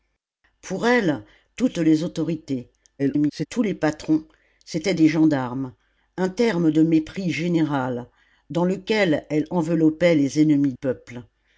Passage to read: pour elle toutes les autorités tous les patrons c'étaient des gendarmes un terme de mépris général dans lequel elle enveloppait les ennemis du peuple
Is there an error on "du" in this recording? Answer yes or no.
yes